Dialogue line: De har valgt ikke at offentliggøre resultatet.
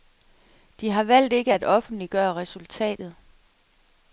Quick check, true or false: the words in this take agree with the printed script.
true